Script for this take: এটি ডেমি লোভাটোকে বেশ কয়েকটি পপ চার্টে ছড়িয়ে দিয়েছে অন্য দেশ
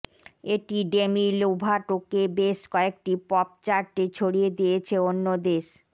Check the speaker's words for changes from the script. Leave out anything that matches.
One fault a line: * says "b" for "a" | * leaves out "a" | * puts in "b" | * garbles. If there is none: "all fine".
all fine